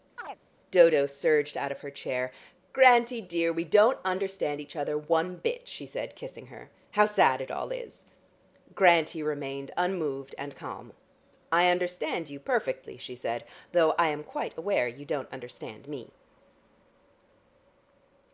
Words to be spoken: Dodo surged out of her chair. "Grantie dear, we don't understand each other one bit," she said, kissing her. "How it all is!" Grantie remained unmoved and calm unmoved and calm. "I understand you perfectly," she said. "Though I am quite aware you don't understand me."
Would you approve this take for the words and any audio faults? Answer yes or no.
no